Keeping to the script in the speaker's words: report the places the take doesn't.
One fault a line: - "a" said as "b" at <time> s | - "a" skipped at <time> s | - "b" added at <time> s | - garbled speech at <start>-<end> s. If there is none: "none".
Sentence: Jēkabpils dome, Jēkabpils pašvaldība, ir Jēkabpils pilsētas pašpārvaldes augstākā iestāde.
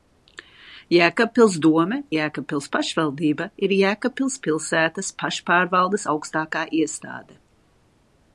none